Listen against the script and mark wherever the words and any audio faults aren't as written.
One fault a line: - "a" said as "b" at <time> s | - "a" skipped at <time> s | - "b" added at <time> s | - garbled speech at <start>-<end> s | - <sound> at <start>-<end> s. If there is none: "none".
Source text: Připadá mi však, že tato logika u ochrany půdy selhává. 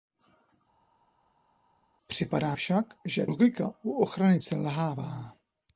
- "mi" skipped at 2.5 s
- "tato" skipped at 3.3 s
- "půdy" skipped at 4.4 s